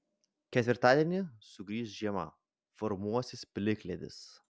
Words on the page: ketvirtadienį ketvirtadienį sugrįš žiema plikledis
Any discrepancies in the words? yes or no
yes